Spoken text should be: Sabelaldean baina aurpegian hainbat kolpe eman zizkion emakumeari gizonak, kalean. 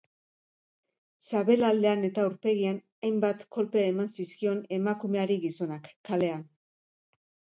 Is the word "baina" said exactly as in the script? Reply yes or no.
no